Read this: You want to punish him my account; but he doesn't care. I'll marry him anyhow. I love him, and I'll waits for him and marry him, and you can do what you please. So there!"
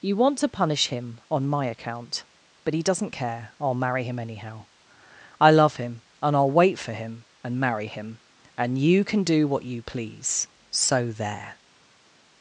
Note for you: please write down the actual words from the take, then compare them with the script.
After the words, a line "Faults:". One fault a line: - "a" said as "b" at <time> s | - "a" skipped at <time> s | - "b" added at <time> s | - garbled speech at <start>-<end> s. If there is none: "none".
You want to punish him on my account; but he doesn't care. I'll marry him anyhow. I love him, and I'll wait for him and marry him, and you can do what you please. So there!"
Faults:
- "on" added at 1.3 s
- "waits" said as "wait" at 6.5 s